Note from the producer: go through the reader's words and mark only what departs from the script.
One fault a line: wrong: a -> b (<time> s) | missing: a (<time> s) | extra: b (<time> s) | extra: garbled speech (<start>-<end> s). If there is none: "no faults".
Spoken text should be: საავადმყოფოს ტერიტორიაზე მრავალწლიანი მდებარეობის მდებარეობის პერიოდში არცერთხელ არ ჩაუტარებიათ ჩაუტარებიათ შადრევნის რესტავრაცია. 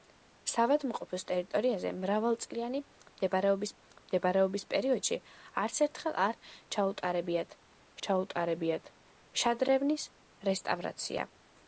no faults